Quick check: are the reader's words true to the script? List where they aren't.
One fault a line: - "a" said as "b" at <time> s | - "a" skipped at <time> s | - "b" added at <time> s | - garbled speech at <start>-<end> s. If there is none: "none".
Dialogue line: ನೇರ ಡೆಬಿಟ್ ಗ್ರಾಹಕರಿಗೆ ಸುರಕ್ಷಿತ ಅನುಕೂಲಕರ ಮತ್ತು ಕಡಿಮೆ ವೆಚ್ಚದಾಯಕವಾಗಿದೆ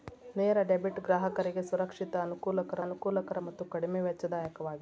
- "ಅನುಕೂಲಕರ" added at 2.8 s